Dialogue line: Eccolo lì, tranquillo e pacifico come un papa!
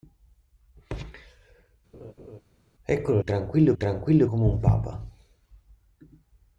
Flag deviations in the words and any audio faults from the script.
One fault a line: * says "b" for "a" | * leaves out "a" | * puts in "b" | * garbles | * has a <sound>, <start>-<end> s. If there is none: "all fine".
* has a laugh, 1.9-2.4 s
* leaves out "lì"
* says "tranquillo" for "pacifico"